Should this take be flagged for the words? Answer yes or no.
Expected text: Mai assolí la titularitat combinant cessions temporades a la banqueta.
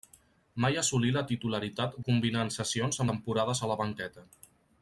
no